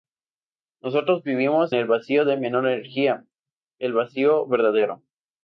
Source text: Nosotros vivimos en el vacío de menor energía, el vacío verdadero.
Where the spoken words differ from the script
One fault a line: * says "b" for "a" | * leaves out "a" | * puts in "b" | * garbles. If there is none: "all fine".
* leaves out "en"